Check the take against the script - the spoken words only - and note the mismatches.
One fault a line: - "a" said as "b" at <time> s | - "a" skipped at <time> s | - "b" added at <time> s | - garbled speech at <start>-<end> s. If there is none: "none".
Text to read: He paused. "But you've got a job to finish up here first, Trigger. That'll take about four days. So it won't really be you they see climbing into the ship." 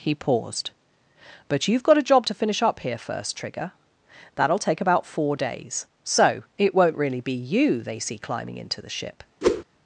none